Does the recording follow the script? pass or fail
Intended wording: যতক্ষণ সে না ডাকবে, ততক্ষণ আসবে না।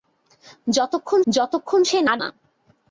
fail